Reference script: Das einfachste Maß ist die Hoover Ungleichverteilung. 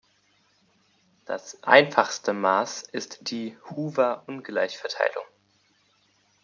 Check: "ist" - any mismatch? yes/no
no